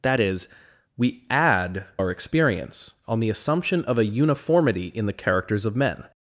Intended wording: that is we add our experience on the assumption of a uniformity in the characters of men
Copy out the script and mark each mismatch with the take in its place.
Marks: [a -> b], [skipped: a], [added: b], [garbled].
that is we add our experience on the assumption of a uniformity in the characters of men